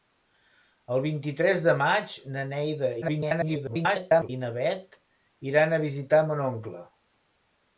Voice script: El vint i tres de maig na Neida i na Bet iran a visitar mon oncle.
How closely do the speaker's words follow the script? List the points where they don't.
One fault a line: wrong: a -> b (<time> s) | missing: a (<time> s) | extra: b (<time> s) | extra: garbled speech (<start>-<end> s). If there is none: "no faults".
extra: garbled speech (3.0-4.3 s)